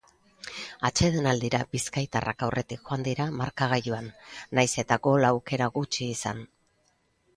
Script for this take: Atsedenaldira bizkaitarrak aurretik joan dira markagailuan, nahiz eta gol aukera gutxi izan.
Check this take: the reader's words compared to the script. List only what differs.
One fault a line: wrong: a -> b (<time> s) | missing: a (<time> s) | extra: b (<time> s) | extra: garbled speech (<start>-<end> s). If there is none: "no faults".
no faults